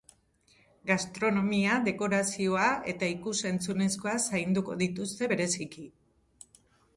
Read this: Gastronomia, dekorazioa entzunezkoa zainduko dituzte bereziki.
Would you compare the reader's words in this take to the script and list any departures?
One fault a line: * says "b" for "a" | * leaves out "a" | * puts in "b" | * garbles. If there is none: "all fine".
* puts in "eta ikus"